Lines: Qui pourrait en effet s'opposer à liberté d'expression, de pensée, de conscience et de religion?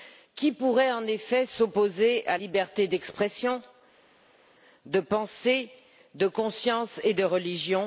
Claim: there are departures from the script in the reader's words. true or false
false